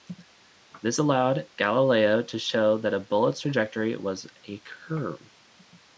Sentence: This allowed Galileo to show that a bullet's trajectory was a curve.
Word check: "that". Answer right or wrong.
right